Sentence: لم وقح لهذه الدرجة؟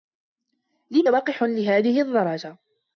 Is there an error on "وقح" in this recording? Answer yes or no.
no